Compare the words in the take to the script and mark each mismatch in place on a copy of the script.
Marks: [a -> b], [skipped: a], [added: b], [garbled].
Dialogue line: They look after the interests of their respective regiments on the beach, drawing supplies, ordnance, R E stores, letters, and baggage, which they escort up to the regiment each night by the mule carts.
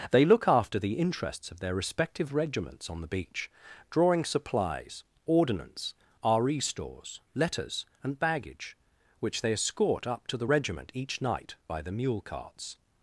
They look after the interests of their respective regiments on the beach, drawing supplies, ordnance, R E stores, letters, and baggage, which they escort up to the regiment each night by the mule carts.